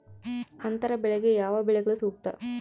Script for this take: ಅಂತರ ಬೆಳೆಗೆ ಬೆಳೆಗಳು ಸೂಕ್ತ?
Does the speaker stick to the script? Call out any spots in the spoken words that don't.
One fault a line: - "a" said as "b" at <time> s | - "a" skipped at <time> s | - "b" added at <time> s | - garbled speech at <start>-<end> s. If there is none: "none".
- "ಯಾವ" added at 1.4 s